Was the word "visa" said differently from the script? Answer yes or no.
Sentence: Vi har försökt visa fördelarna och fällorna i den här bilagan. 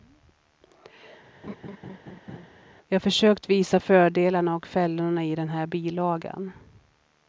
no